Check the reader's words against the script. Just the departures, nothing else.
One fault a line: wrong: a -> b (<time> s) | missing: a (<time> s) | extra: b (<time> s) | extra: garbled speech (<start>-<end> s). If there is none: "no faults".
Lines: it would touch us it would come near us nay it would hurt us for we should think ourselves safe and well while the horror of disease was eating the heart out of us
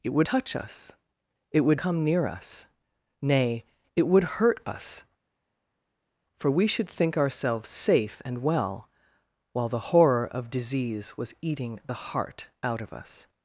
no faults